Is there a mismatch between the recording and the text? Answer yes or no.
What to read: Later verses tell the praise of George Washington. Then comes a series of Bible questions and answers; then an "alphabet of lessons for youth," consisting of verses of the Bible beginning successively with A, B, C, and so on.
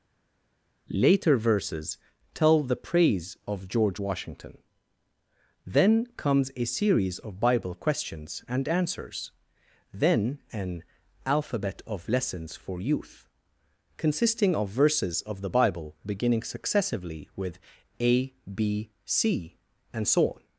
no